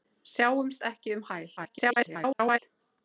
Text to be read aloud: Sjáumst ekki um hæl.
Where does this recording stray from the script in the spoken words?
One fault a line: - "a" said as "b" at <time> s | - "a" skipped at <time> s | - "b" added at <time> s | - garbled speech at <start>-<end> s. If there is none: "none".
- garbled speech at 1.6-2.6 s